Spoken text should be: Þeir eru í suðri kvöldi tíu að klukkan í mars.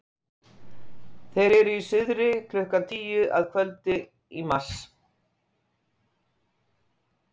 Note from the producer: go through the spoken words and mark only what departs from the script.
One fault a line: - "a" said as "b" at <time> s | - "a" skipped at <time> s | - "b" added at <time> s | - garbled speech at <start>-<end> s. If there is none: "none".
- "kvöldi" said as "klukkan" at 2.5 s
- "klukkan" said as "kvöldi" at 3.6 s